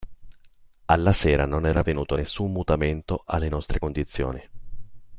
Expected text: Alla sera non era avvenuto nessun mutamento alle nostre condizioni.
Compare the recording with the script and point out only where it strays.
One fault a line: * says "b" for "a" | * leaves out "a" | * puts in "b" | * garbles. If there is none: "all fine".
all fine